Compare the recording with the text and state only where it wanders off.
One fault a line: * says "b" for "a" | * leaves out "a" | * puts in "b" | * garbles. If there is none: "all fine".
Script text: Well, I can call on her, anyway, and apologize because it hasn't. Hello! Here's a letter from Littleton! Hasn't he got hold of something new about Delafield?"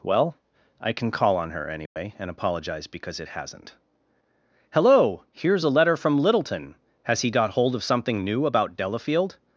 * says "Has" for "Hasn't"